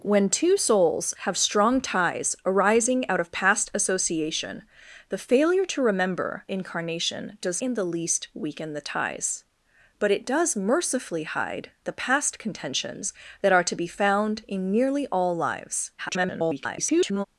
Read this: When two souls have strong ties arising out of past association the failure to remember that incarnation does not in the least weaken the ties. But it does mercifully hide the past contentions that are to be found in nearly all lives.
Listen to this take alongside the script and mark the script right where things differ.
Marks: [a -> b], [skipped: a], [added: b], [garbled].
When two souls have strong ties arising out of past association the failure to remember [skipped: that] incarnation does [skipped: not] in the least weaken the ties. But it does mercifully hide the past contentions that are to be found in nearly all lives. [garbled]